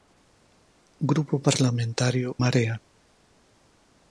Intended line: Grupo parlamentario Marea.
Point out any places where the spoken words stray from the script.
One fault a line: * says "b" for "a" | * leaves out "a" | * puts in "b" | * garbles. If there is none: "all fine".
all fine